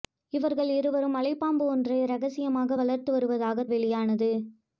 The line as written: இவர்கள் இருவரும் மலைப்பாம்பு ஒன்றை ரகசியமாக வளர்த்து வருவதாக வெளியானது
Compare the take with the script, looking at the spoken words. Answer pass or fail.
pass